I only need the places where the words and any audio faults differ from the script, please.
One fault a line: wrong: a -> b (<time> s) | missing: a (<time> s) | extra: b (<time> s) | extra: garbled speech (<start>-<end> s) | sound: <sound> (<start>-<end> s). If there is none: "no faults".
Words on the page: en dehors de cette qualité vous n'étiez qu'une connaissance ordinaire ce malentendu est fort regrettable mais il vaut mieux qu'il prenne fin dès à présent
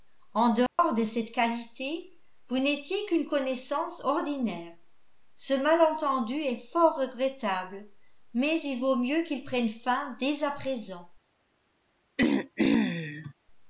sound: dropout (0.7-0.8 s)
sound: throat clearing (12.2-13.3 s)